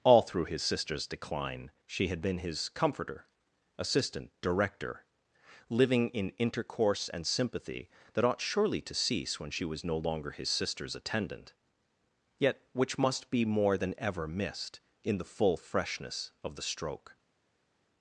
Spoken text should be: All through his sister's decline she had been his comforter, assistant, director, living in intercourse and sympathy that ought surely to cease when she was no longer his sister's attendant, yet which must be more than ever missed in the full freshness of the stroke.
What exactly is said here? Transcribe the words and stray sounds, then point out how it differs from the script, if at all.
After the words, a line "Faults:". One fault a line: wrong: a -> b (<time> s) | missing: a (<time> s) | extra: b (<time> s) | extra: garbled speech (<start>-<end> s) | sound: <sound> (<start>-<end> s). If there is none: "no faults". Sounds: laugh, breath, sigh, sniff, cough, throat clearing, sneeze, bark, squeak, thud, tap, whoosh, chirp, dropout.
All through his sister's decline she had been his comforter, assistant, director, living in intercourse and sympathy that ought surely to cease when she was no longer his sister's attendant, yet which must be more than ever missed in the full freshness of the stroke.
Faults:
no faults